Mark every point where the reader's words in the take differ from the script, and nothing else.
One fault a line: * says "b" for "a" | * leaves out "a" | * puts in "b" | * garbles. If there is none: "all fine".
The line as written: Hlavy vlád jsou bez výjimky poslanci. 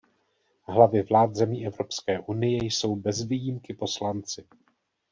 * puts in "zemí Evropské unie"